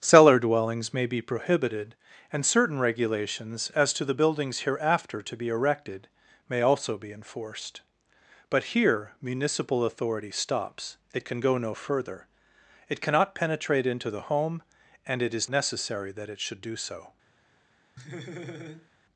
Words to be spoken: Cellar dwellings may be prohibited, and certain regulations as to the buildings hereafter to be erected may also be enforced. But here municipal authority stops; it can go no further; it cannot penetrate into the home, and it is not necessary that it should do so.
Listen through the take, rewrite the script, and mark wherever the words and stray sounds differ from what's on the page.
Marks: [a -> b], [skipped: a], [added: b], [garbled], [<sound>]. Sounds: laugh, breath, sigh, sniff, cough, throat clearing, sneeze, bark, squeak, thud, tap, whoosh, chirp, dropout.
Cellar dwellings may be prohibited, and certain regulations as to the buildings hereafter to be erected may also be enforced. But here municipal authority stops; it can go no further; it cannot penetrate into the home, and it is [skipped: not] necessary that it should do so. [laugh]